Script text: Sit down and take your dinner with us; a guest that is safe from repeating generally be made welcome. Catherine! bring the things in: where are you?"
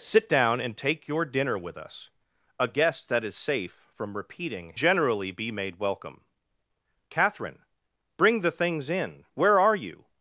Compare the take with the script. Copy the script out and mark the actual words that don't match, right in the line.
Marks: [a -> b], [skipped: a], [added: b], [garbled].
Sit down and take your dinner with us; a guest that is safe from repeating generally be made welcome. Catherine! bring the things in: where are you?"